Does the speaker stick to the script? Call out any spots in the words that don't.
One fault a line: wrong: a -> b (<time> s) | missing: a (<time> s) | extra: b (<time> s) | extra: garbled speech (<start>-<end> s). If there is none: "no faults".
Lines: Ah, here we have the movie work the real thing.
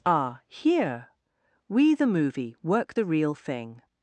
missing: have (1.9 s)